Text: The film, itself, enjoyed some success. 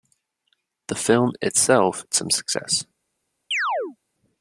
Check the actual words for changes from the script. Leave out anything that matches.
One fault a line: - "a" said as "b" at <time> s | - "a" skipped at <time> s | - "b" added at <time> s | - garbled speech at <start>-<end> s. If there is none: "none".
- "enjoyed" skipped at 2.0 s